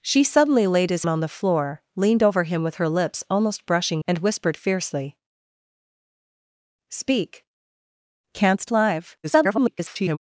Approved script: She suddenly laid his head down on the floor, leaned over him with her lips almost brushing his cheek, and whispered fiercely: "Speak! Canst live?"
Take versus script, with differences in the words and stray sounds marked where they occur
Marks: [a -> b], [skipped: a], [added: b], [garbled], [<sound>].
She suddenly laid his [skipped: head down] on the floor, leaned over him with her lips almost brushing [skipped: his cheek,] and whispered fiercely: "Speak! Canst live?" [garbled]